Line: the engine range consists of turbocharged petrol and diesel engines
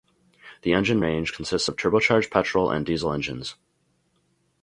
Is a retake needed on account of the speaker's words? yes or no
no